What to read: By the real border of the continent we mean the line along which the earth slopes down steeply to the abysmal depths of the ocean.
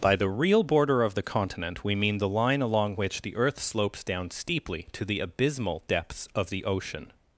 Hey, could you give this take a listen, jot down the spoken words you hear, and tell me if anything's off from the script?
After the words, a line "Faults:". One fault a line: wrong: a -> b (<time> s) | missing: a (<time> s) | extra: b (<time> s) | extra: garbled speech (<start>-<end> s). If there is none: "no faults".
By the real border of the continent we mean the line along which the earth slopes down steeply to the abysmal depths of the ocean.
Faults:
no faults